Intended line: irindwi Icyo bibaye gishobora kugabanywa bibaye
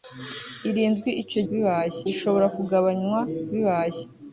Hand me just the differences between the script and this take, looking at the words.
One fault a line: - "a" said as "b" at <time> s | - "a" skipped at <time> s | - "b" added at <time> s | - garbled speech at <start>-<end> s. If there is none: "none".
none